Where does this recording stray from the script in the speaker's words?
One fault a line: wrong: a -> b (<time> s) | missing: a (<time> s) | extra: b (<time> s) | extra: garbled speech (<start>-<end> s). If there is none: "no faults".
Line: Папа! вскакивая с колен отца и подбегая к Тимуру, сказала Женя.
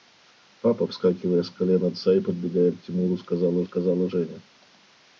extra: сказала (3.6 s)